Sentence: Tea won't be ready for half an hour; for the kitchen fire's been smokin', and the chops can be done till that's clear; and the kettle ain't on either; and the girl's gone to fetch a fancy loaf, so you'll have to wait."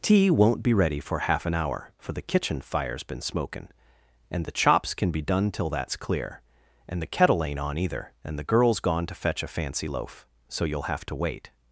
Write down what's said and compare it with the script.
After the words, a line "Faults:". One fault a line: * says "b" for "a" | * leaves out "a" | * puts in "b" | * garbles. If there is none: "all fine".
Tea won't be ready for half an hour; for the kitchen fire's been smokin', and the chops can be done till that's clear; and the kettle ain't on either; and the girl's gone to fetch a fancy loaf, so you'll have to wait."
Faults:
all fine